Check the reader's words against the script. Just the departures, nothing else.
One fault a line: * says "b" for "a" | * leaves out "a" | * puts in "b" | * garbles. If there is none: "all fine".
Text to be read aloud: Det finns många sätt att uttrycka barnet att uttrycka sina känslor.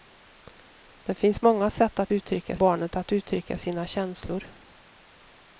all fine